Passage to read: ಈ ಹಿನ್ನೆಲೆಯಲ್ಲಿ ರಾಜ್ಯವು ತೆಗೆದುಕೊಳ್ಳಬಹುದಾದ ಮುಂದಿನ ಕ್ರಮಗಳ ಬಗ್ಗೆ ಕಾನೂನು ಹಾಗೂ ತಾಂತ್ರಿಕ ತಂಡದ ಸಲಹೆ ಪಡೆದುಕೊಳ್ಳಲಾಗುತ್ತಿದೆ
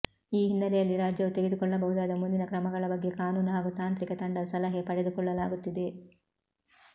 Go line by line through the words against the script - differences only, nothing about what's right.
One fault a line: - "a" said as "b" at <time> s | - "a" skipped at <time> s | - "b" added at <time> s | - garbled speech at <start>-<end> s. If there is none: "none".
none